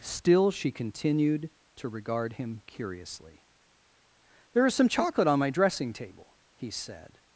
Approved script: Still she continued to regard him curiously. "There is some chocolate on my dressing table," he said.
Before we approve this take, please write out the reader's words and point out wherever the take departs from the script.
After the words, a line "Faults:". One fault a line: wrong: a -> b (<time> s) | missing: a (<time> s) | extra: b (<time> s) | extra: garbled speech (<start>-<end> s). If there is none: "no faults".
Still she continued to regard him curiously. "There is some chocolate on my dressing table," he said.
Faults:
no faults